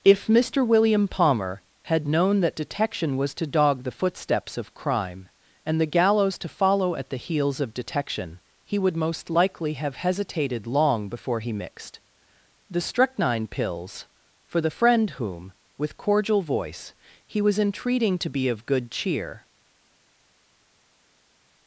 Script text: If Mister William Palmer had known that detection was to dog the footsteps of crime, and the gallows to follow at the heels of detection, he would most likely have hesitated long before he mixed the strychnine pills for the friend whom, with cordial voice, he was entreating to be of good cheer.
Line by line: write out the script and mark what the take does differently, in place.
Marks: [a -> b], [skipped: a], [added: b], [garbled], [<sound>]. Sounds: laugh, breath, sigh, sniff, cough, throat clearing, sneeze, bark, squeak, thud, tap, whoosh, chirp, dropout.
If Mister William Palmer had known that detection was to dog the footsteps of crime, and the gallows to follow at the heels of detection, he would most likely have hesitated long before he mixed the strychnine pills for the friend whom, with cordial voice, he was entreating to be of good cheer.